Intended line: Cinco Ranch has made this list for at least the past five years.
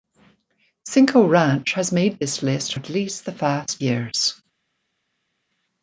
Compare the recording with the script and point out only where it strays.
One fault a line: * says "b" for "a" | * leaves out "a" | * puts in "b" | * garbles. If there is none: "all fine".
* leaves out "for"
* leaves out "five"